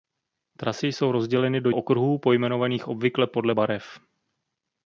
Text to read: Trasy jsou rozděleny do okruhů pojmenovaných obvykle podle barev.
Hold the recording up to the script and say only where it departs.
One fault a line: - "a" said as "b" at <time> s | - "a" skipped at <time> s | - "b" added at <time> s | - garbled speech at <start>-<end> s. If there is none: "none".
none